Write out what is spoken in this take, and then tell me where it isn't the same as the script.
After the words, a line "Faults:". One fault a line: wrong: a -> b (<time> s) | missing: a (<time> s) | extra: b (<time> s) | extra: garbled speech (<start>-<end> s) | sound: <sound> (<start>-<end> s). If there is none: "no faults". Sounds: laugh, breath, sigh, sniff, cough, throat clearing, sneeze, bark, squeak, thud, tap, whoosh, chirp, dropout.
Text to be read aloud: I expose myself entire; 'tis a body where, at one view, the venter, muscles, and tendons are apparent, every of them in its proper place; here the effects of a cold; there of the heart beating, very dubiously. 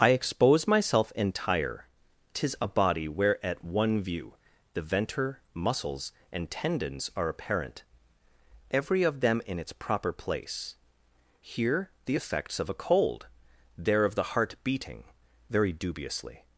I expose myself entire; 'tis a body where, at one view, the venter, muscles, and tendons are apparent, every of them in its proper place; here the effects of a cold; there of the heart beating, very dubiously.
Faults:
no faults